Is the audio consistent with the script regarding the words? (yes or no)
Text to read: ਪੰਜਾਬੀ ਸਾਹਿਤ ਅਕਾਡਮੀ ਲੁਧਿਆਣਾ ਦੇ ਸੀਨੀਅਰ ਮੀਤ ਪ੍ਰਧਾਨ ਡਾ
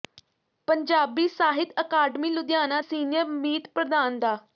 no